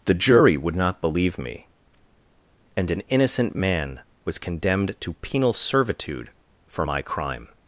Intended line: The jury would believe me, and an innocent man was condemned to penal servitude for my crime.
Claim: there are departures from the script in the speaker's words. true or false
true